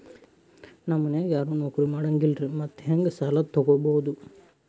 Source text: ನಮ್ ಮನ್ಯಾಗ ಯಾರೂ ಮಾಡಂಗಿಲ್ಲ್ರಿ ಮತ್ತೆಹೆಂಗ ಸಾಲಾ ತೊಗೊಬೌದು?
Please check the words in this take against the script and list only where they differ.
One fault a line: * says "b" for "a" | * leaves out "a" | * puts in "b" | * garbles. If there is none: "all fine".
* puts in "ನೌಕ್ರಿ"